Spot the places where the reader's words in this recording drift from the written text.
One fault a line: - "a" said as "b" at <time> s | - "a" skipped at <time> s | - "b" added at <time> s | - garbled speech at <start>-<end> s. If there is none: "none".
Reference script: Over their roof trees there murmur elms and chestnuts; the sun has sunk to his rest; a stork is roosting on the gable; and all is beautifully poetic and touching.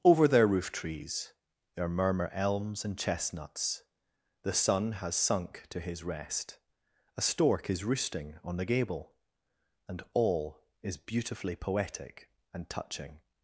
none